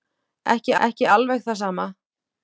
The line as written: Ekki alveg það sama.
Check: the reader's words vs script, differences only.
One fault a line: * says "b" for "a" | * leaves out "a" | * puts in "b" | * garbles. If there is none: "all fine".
* puts in "ekki"